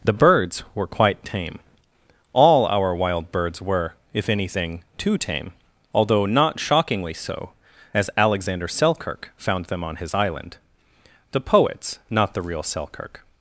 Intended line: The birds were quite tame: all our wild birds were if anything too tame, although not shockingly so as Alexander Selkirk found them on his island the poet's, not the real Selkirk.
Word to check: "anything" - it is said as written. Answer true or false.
true